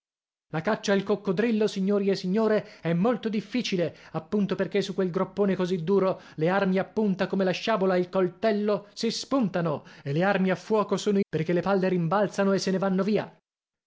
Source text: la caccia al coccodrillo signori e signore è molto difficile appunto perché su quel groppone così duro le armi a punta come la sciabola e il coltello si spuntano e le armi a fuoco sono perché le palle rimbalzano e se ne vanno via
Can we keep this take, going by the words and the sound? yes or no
yes